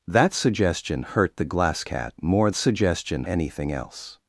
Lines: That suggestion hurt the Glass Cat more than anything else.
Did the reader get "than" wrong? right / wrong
wrong